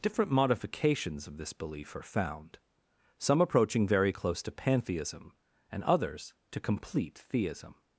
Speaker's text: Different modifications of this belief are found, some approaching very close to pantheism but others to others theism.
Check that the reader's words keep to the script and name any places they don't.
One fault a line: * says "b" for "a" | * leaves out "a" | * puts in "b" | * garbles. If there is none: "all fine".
* says "and" for "but"
* says "complete" for "others"